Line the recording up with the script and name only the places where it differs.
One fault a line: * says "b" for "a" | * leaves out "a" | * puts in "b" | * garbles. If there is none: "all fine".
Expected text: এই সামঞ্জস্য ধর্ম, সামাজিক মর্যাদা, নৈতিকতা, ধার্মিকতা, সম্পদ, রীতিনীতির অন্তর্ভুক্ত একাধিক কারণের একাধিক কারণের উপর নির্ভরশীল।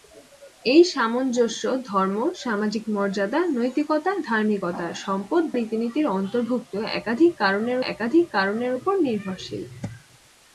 all fine